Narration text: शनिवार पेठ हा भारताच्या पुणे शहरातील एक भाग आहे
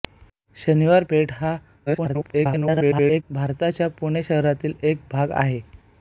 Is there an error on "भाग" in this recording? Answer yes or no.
no